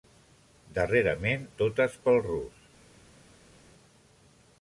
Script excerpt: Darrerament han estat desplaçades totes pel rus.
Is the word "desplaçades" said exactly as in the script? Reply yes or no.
no